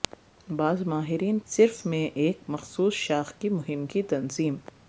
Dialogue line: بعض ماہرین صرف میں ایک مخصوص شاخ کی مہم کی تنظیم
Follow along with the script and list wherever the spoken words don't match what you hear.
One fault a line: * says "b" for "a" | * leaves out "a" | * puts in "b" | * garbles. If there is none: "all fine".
all fine